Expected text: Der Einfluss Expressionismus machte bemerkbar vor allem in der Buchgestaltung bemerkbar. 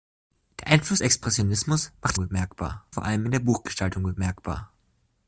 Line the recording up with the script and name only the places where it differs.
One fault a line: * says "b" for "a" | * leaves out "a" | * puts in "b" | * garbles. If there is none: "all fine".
all fine